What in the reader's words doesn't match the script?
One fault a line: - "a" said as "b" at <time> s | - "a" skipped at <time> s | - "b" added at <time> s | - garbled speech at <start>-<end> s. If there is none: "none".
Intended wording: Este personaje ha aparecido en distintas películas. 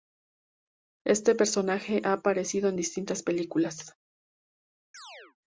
none